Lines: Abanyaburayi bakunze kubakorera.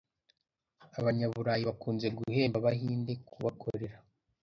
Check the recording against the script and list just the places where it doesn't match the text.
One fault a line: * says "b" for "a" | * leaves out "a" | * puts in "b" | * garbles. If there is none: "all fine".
* puts in "guhemba Abahinde"